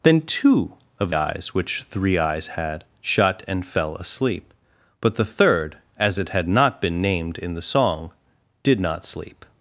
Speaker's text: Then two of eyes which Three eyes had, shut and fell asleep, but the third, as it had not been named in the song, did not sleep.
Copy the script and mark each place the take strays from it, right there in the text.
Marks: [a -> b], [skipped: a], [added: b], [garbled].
Then two of eyes which Three eyes had, shut and fell asleep, but the third, as it had not been named in the song, did not sleep.